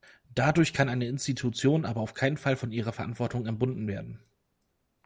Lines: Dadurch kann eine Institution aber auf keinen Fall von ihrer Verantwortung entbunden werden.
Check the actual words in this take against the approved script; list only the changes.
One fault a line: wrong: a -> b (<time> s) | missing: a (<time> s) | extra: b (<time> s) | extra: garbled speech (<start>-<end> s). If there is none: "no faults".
no faults